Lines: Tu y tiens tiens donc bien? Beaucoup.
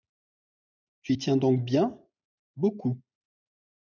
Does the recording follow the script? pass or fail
fail